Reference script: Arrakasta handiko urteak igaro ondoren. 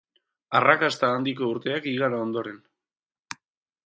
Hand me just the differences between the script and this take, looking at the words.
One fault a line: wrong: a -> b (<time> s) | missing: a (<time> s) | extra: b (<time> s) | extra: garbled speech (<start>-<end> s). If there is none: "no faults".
no faults